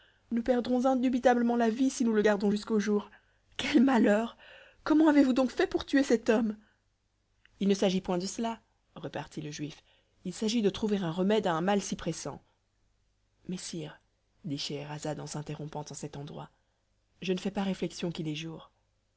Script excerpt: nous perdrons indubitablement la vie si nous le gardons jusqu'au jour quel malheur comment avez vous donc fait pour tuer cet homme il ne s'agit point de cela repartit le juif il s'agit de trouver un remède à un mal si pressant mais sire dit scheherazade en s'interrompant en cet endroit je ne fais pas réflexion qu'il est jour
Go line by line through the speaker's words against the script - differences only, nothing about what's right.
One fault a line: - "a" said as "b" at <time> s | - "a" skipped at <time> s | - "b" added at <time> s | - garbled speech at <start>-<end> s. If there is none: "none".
none